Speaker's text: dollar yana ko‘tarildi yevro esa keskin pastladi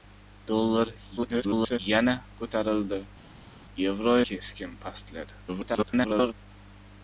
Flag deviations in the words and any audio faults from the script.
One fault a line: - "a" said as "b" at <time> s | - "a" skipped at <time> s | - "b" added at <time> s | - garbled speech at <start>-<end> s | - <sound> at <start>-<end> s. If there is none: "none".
- garbled speech at 1.2-1.8 s
- "esa" skipped at 4.1 s
- garbled speech at 5.5-6.3 s